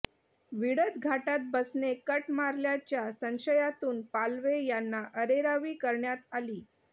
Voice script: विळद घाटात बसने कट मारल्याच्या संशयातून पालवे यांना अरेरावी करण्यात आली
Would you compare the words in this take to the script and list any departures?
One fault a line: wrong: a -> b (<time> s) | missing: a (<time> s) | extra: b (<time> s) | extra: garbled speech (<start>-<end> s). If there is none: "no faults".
no faults